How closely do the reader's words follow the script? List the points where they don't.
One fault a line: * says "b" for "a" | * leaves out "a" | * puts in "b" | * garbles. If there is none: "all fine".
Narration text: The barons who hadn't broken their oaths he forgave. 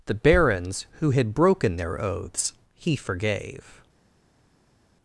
* says "had" for "hadn't"